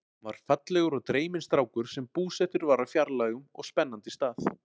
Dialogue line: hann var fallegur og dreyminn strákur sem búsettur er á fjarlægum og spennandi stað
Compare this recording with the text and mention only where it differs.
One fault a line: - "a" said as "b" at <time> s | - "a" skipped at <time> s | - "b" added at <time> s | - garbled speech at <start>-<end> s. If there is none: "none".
- "er" said as "var" at 2.7 s